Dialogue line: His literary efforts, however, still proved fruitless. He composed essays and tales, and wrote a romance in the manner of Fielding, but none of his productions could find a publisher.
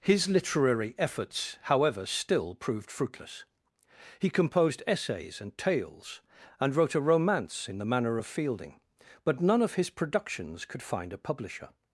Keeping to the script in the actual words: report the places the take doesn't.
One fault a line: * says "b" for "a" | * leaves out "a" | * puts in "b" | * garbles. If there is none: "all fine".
all fine